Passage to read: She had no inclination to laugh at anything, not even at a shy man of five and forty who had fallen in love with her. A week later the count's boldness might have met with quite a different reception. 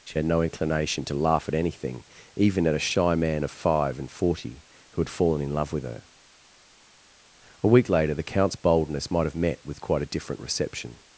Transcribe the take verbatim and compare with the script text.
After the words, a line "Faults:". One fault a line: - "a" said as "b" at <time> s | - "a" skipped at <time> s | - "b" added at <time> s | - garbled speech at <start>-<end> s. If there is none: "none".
She had no inclination to laugh at anything, even at a shy man of five and forty who had fallen in love with her. A week later the count's boldness might have met with quite a different reception.
Faults:
- "not" skipped at 2.0 s